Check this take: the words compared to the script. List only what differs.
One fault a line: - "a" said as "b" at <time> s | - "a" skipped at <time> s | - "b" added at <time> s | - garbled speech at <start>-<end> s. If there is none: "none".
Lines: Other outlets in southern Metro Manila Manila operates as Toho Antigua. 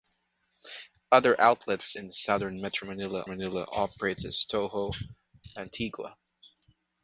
none